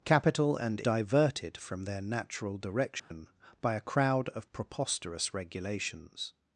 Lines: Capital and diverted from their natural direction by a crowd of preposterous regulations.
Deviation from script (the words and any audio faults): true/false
true